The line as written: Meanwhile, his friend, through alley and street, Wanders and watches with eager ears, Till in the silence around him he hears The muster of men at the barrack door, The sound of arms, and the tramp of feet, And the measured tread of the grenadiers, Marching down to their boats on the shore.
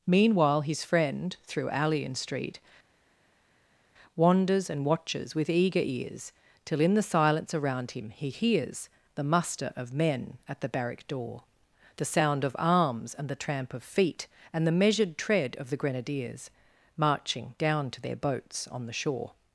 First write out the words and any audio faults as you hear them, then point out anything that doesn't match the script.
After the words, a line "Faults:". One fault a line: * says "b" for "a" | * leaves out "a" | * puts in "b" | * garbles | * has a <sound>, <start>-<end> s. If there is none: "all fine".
Meanwhile, his friend, through alley and street, Wanders and watches with eager ears, Till in the silence around him he hears The muster of men at the barrack door, The sound of arms, and the tramp of feet, And the measured tread of the grenadiers, Marching down to their boats on the shore.
Faults:
all fine